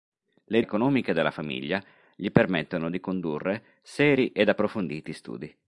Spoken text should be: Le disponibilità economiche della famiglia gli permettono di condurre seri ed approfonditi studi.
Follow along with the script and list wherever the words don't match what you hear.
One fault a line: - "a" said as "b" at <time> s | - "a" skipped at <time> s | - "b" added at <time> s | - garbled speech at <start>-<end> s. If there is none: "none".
- "disponibilità" skipped at 0.6 s